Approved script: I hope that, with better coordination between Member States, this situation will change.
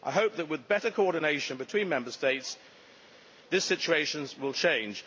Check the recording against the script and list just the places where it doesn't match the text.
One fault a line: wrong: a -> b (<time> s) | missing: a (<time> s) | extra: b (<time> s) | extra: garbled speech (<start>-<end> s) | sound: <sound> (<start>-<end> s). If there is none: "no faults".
no faults